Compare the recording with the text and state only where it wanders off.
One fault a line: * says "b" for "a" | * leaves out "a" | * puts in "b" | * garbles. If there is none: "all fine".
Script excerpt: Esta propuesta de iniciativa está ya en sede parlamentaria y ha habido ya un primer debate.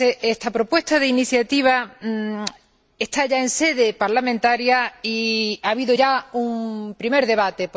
all fine